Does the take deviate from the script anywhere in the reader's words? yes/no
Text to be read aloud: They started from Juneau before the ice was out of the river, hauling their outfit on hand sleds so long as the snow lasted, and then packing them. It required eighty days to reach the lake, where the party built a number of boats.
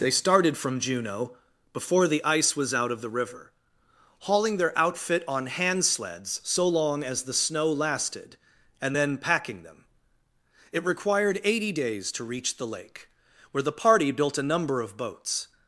no